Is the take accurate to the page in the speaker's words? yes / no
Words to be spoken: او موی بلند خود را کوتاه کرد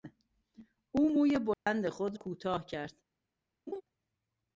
no